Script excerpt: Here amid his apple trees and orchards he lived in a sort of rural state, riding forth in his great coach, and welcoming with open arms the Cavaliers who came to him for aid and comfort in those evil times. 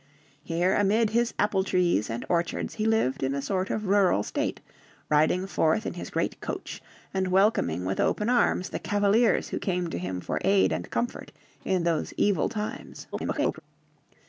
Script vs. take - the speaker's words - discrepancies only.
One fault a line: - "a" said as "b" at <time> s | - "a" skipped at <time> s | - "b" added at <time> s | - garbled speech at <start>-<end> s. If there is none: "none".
- garbled speech at 13.1-13.6 s